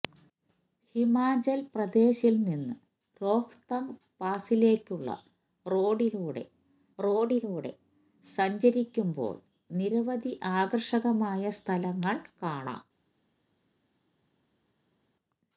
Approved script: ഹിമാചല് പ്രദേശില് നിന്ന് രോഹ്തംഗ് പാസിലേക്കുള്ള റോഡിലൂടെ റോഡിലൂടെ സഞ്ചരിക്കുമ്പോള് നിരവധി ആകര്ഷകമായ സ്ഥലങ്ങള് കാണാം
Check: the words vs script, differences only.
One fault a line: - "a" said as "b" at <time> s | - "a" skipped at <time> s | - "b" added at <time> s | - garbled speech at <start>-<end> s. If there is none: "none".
none